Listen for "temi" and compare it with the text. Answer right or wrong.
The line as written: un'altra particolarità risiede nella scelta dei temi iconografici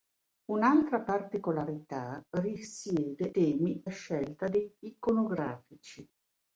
wrong